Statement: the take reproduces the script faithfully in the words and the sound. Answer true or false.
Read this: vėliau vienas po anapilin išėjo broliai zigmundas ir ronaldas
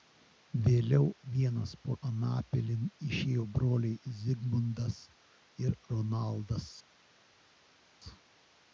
true